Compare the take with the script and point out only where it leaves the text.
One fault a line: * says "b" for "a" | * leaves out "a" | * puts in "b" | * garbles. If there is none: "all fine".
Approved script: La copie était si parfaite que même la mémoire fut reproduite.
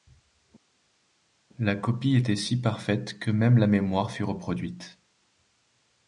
all fine